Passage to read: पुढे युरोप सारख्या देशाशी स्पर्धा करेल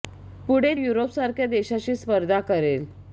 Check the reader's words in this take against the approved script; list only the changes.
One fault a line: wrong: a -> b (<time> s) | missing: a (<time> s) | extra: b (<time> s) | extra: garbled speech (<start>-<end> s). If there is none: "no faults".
no faults